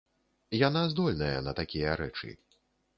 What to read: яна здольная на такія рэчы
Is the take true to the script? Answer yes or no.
yes